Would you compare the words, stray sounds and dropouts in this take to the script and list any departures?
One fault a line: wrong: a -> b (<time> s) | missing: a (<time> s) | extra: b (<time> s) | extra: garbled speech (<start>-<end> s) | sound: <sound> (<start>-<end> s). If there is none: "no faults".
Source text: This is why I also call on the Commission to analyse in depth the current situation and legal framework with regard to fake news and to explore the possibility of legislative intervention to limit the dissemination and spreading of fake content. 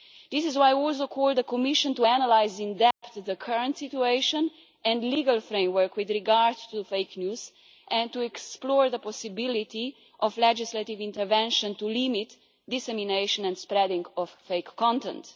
sound: dropout (2.9-3.0 s)